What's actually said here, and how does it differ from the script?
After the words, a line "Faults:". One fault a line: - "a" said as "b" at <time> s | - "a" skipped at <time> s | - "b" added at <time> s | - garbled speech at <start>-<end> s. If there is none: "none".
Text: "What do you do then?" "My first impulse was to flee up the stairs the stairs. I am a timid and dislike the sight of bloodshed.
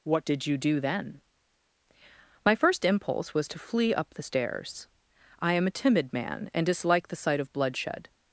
"What did you do then?" "My first impulse was to flee up the stairs. I am a timid man and dislike the sight of bloodshed.
Faults:
- "do" said as "did" at 0.2 s
- "the stairs" skipped at 4.9 s
- "man" added at 6.1 s